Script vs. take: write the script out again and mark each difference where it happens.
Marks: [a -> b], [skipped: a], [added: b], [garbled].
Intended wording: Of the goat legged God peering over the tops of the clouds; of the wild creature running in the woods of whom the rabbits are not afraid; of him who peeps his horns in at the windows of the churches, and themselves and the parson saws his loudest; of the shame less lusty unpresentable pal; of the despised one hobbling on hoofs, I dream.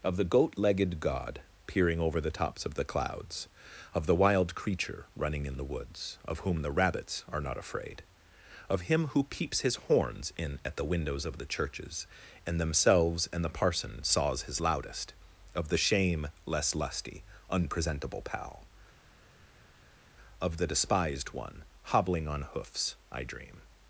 Of the goat legged God peering over the tops of the clouds; of the wild creature running in the woods of whom the rabbits are not afraid; of him who peeps his horns in at the windows of the churches, and themselves and the parson saws his loudest; of the shame less lusty unpresentable pal; of the despised one hobbling on hoofs, I dream.